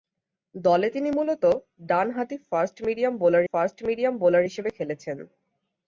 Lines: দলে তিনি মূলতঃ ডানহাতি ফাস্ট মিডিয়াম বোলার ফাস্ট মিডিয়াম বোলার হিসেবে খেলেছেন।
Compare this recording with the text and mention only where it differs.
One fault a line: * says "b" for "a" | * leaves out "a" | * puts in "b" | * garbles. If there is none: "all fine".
all fine